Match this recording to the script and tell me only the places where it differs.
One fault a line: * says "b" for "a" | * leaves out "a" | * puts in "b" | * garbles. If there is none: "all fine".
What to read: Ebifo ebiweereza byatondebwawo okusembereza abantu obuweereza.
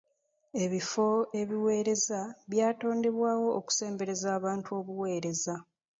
all fine